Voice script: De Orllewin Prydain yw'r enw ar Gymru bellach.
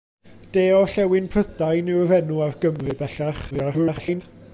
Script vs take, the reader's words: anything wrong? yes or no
yes